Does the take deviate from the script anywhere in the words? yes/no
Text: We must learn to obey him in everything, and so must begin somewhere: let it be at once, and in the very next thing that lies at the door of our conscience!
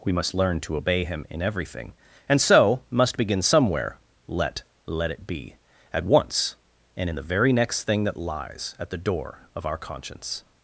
yes